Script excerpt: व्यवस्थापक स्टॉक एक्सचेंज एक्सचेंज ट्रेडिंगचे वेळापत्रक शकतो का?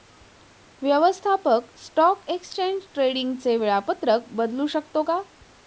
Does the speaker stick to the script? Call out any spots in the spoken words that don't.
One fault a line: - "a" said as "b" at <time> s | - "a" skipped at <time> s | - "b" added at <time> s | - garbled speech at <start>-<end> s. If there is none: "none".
- "एक्सचेंज" skipped at 2.8 s
- "बदलू" added at 4.3 s